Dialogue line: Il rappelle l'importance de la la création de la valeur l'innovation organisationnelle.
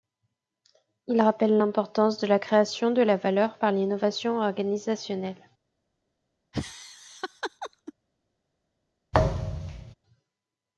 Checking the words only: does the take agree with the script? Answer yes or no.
no